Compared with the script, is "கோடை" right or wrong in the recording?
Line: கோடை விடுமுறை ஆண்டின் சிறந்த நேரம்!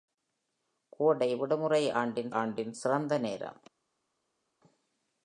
right